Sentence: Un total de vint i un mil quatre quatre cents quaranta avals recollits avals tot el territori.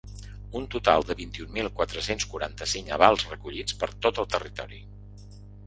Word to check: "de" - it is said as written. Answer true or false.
true